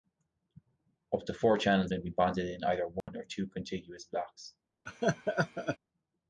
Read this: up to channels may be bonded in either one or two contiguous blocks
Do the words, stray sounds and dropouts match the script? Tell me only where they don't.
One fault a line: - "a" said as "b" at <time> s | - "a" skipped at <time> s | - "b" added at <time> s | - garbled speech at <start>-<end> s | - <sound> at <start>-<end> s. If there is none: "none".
- "four" added at 1.4 s
- dropout at 3.0-3.1 s
- laugh at 4.9-5.8 s